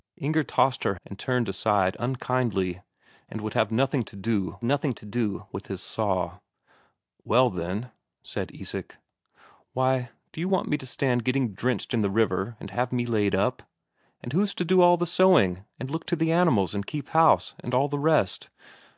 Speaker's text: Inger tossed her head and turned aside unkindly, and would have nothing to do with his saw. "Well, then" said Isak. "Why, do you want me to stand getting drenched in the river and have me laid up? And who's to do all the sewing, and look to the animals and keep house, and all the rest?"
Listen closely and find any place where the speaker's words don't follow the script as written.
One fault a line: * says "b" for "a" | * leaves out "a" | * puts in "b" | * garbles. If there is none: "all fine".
* leaves out "head"
* puts in "nothing to do"